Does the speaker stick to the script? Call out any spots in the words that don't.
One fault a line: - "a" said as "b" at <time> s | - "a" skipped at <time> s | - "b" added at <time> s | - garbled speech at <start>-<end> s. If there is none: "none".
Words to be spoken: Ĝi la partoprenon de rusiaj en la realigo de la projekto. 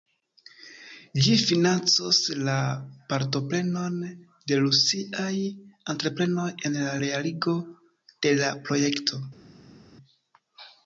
- "financos" added at 1.5 s
- "entreprenoj" added at 6.0 s